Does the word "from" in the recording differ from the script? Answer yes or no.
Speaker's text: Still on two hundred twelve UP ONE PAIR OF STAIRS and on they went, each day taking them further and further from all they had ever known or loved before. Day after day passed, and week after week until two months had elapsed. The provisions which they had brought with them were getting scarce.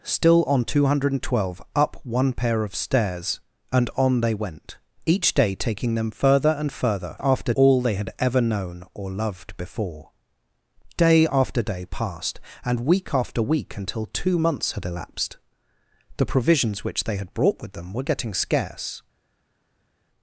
yes